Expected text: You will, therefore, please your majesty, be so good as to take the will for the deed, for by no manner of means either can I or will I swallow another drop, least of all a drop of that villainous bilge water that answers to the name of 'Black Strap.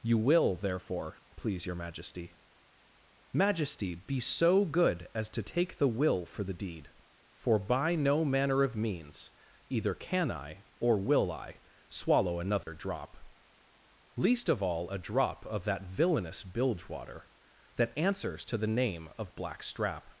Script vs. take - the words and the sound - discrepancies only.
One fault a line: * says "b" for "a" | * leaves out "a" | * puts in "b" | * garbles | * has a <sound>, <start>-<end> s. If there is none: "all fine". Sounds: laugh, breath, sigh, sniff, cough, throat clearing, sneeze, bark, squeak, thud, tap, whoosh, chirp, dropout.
* puts in "majesty"
* has a dropout, 12.6-12.7 s